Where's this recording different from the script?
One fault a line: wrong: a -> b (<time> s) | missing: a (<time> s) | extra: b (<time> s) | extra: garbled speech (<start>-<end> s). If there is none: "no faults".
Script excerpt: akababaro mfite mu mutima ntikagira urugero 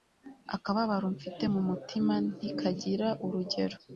no faults